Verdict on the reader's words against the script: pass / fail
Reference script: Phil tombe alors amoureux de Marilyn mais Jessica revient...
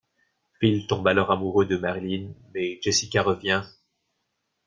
pass